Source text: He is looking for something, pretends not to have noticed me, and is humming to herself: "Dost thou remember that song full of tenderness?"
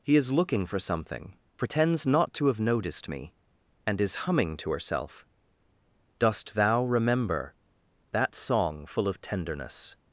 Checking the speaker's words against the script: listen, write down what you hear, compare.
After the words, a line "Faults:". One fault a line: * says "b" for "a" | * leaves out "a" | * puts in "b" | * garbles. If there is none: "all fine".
He is looking for something, pretends not to have noticed me, and is humming to herself: "Dost thou remember that song full of tenderness?"
Faults:
all fine